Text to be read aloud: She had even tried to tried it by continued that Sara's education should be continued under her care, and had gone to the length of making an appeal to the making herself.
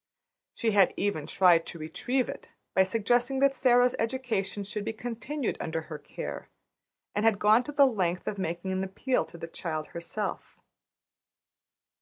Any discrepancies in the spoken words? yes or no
yes